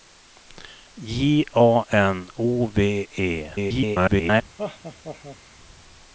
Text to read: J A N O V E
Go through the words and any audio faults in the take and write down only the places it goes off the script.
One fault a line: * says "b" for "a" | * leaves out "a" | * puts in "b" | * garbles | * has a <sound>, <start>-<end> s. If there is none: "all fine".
* garbles
* has a laugh, 4.6-5.4 s